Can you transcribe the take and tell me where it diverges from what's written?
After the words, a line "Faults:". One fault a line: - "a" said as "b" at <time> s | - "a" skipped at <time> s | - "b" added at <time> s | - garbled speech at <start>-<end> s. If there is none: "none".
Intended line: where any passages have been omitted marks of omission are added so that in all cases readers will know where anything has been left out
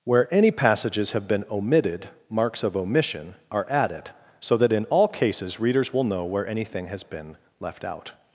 where any passages have been omitted marks of omission are added so that in all cases readers will know where anything has been left out
Faults:
none